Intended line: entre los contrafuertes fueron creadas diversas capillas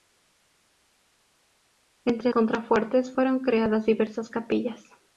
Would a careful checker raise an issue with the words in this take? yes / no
yes